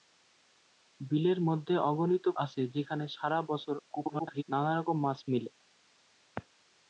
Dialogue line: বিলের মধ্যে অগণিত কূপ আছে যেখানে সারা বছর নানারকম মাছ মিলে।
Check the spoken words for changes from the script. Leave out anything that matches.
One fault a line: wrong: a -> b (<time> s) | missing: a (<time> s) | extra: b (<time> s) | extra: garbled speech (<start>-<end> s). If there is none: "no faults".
missing: কূপ (2.2 s)
extra: garbled speech (3.9-4.4 s)